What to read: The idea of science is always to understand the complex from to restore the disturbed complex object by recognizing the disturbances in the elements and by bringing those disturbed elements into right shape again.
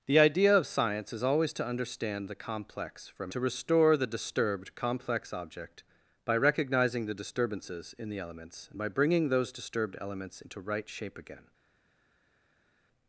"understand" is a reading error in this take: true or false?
false